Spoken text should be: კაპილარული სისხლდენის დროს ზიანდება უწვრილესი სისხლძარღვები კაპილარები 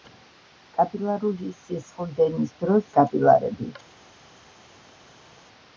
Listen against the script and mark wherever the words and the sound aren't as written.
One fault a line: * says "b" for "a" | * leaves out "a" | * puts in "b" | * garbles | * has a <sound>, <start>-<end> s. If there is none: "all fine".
* leaves out "ზიანდება უწვრილესი სისხლძარღვები"